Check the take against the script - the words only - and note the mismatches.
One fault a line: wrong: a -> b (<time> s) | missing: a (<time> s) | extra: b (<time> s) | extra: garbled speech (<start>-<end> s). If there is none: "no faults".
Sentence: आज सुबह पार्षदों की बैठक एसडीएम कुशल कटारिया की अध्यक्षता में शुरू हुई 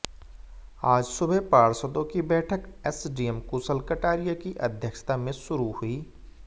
no faults